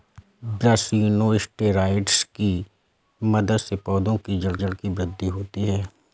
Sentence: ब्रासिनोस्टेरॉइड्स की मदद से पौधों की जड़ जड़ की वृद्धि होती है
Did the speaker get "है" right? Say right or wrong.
right